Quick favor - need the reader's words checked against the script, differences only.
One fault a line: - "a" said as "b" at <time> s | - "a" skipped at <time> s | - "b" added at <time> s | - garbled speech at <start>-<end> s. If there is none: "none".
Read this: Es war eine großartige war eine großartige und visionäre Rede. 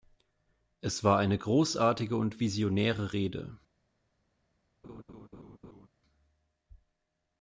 - "war eine großartige" skipped at 2.2 s